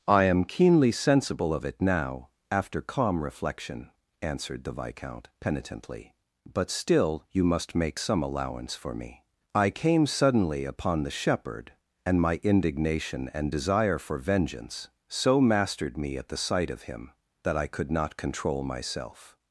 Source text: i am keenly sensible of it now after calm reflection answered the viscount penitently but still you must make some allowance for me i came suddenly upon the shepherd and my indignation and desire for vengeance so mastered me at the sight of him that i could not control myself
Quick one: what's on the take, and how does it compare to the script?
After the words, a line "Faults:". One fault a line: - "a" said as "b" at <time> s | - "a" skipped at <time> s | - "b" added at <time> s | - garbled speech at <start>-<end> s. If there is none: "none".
i am keenly sensible of it now after calm reflection answered the viscount penitently but still you must make some allowance for me i came suddenly upon the shepherd and my indignation and desire for vengeance so mastered me at the sight of him that i could not control myself
Faults:
none